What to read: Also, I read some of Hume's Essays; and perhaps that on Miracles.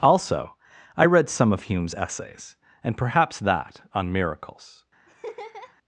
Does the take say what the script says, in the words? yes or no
yes